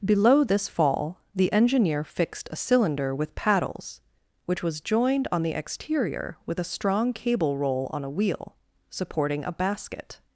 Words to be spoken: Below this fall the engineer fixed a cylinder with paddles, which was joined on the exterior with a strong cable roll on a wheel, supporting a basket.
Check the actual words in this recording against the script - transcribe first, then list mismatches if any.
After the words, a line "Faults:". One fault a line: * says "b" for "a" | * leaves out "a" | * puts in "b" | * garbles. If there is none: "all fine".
Below this fall the engineer fixed a cylinder with paddles, which was joined on the exterior with a strong cable roll on a wheel, supporting a basket.
Faults:
all fine